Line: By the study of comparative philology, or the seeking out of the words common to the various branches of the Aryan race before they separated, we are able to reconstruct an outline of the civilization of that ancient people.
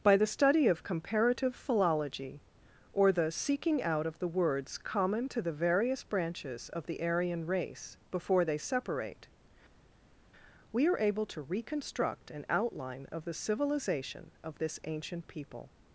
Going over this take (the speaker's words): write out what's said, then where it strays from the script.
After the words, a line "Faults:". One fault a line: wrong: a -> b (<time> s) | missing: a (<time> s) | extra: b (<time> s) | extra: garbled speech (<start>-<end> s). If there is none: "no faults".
By the study of comparative philology, or the seeking out of the words common to the various branches of the Aryan race before they separate, we are able to reconstruct an outline of the civilization of this ancient people.
Faults:
wrong: separated -> separate (8.6 s)
wrong: that -> this (14.6 s)